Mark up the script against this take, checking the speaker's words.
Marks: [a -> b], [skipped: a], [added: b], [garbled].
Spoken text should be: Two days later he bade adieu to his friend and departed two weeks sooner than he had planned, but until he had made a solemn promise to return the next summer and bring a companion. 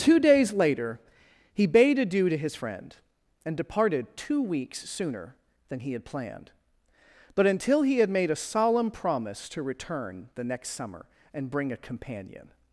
Two days later he bade adieu to his friend and departed two weeks sooner than he had planned, but until he had made a solemn promise to return the next summer and bring a companion.